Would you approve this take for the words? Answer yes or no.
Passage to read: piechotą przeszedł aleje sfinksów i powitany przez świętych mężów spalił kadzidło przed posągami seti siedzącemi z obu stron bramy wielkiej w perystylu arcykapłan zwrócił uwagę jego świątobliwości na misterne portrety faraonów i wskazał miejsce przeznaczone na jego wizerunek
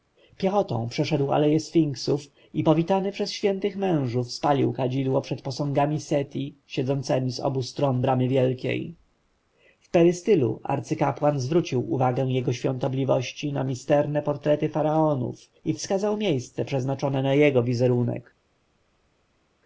yes